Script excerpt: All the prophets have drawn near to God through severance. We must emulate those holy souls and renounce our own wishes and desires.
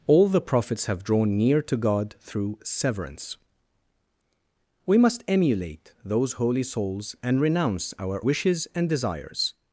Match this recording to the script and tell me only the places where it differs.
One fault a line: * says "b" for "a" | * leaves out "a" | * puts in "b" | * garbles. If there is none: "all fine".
* leaves out "own"